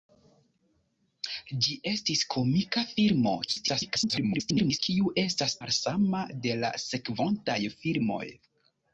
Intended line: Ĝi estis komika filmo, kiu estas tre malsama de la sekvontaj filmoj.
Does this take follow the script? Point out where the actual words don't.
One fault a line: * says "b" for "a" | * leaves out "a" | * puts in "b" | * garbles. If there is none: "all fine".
* garbles
* leaves out "tre"